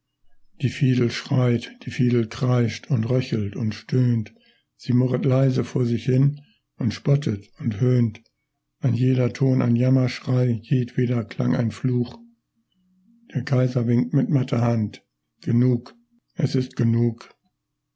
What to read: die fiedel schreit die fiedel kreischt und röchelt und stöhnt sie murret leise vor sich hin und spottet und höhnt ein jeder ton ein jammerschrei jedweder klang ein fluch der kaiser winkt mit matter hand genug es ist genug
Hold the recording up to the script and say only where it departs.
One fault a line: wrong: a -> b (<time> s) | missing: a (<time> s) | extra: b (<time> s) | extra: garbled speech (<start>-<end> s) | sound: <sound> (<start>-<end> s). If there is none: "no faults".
no faults